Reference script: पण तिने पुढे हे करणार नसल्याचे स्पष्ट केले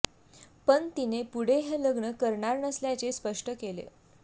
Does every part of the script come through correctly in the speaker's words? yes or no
no